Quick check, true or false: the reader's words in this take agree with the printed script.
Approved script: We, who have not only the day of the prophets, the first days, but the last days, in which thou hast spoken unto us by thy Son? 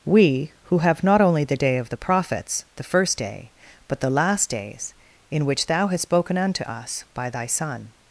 false